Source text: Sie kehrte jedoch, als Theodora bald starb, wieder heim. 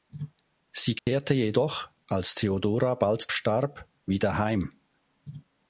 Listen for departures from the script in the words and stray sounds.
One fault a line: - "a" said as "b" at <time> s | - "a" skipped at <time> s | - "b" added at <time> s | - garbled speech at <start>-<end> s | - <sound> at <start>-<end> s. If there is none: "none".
- dropout at 1.0-1.1 s